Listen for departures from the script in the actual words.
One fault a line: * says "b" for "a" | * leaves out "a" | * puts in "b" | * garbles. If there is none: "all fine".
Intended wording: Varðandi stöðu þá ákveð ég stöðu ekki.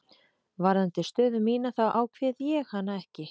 * puts in "mína"
* says "hana" for "stöðu"